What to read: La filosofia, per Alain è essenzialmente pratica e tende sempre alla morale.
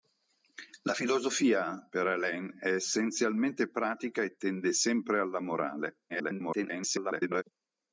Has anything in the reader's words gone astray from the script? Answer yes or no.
yes